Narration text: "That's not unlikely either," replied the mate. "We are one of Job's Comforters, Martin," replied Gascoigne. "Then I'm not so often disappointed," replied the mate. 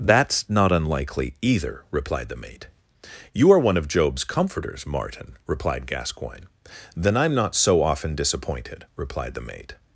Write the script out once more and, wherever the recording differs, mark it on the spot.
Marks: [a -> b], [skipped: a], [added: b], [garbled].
"That's not unlikely either," replied the mate. ["We -> You] are one of Job's Comforters, Martin," replied Gascoigne. "Then I'm not so often disappointed," replied the mate.